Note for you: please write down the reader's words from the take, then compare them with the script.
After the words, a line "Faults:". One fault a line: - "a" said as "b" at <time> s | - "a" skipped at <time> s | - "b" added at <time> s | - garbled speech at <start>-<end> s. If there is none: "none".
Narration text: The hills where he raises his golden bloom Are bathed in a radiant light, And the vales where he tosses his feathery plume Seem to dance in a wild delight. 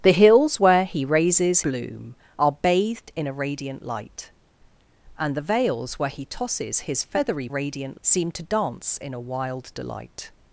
The hills where he raises bloom Are bathed in a radiant light, And the vales where he tosses his feathery radiant Seem to dance in a wild delight.
Faults:
- "his golden" skipped at 1.6 s
- "plume" said as "radiant" at 7.5 s